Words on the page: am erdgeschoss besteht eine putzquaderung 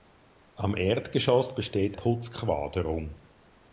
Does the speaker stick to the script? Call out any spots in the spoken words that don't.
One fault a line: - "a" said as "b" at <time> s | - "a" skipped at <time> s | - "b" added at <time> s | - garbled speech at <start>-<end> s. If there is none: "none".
- "eine" skipped at 2.0 s